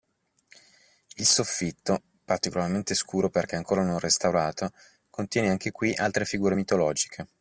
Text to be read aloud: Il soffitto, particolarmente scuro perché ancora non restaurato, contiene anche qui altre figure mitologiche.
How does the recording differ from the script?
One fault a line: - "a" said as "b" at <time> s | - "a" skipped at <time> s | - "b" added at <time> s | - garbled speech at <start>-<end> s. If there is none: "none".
none